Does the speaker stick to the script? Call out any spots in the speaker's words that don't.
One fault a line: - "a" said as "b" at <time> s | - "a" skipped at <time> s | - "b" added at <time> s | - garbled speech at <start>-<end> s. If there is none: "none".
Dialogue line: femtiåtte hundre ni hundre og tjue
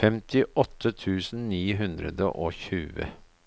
- "hundre" said as "tusen" at 1.0 s